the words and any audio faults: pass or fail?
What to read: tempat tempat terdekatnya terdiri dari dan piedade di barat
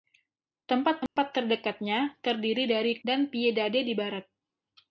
fail